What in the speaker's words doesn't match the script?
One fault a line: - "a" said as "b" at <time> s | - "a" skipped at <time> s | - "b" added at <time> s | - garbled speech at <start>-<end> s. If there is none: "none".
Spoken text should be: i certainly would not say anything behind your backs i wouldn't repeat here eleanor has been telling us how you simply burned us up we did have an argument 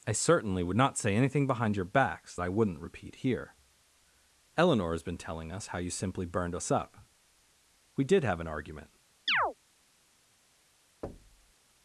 none